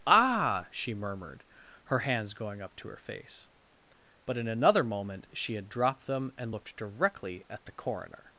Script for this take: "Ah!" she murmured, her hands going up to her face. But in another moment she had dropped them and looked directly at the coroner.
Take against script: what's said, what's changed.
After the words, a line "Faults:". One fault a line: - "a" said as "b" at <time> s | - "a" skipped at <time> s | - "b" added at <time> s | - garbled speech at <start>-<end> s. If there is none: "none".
"Ah!" she murmured, her hands going up to her face. But in another moment she had dropped them and looked directly at the coroner.
Faults:
none